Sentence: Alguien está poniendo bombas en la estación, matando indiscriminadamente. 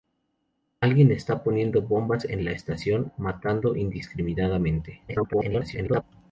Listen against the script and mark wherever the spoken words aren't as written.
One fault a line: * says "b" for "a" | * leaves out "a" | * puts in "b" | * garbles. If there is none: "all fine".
* garbles